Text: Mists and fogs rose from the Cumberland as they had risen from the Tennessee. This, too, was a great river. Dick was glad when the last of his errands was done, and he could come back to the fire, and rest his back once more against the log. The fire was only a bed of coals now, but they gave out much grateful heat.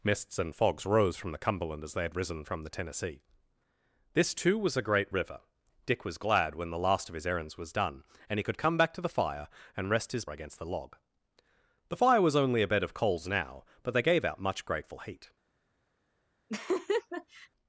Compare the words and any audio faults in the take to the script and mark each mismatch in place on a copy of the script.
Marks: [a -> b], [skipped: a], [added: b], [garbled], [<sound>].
Mists and fogs rose from the Cumberland as they had risen from the Tennessee. This, too, was a great river. Dick was glad when the last of his errands was done, and he could come back to the fire, and rest his [skipped: back once more] against the log. The fire was only a bed of coals now, but they gave out much grateful heat. [laugh]